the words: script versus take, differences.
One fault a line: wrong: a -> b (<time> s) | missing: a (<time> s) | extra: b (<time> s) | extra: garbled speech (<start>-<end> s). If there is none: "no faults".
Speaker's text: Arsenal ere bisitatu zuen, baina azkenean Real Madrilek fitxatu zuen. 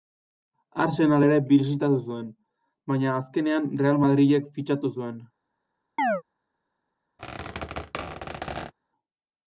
no faults